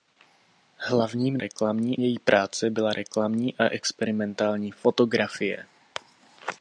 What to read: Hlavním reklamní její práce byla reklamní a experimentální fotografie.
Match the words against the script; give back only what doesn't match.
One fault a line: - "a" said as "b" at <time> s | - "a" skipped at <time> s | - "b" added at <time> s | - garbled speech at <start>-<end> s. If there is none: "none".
none